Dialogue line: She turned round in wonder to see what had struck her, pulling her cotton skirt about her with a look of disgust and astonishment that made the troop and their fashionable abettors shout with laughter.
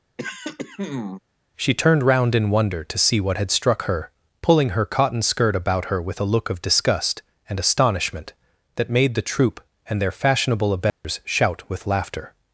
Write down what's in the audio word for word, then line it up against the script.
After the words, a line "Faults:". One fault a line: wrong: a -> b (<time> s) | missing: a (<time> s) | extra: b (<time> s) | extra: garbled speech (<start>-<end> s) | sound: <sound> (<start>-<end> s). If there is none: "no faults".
She turned round in wonder to see what had struck her, pulling her cotton skirt about her with a look of disgust and astonishment that made the troop and their fashionable abettors shout with laughter.
Faults:
sound: throat clearing (0.2-1.2 s)
sound: dropout (10.9-11.0 s)